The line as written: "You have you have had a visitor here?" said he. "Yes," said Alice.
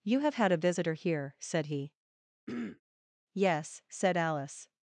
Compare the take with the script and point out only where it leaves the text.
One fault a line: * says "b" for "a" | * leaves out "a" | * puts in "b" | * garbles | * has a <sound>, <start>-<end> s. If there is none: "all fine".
* leaves out "you have"
* has a throat clearing, 2.5-2.8 s